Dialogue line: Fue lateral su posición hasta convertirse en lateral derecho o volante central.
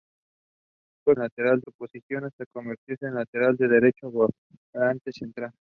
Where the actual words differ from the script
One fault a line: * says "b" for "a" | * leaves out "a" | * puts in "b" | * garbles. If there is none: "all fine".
all fine